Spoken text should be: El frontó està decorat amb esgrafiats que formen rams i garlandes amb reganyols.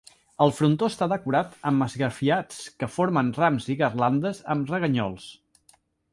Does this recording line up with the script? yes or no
yes